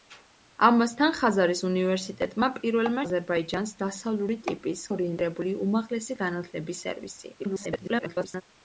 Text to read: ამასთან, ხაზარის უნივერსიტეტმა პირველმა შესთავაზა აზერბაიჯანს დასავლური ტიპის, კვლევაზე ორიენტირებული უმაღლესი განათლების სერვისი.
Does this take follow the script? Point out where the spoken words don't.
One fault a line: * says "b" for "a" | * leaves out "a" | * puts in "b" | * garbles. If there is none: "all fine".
* leaves out "შესთავაზა"
* leaves out "კვლევაზე"
* garbles